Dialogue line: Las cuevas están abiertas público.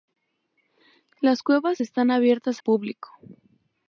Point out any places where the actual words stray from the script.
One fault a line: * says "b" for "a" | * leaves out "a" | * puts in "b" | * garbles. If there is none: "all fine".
all fine